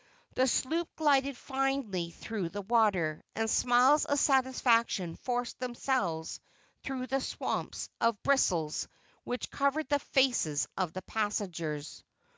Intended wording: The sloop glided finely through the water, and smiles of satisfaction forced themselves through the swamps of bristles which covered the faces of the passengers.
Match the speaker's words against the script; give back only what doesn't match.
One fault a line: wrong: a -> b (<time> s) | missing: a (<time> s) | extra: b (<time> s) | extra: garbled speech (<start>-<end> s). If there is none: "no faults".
no faults